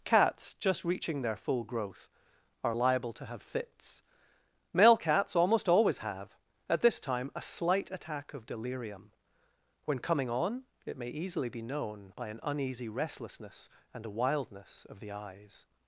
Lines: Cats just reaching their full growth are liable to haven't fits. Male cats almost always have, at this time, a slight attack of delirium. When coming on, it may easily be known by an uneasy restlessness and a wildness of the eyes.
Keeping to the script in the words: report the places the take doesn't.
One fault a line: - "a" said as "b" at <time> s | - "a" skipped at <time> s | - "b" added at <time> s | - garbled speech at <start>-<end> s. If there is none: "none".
- "haven't" said as "have" at 3.2 s